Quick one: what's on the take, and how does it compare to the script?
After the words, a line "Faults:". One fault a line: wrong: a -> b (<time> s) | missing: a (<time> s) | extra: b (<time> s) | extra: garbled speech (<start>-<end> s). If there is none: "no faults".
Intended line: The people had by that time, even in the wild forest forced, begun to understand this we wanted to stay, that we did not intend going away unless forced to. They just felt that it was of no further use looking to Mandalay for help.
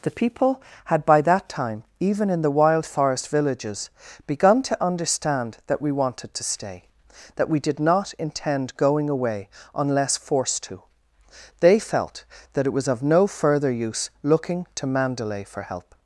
The people had by that time, even in the wild forest villages, begun to understand that we wanted to stay, that we did not intend going away unless forced to. They felt that it was of no further use looking to Mandalay for help.
Faults:
wrong: forced -> villages (3.3 s)
wrong: this -> that (5.7 s)
missing: just (11.8 s)